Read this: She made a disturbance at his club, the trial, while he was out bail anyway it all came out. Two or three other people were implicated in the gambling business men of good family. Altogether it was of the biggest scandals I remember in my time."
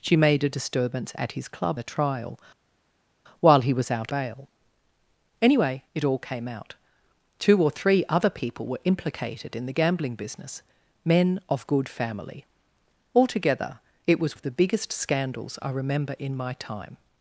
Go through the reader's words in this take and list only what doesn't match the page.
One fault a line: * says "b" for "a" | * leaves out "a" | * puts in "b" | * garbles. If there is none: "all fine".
all fine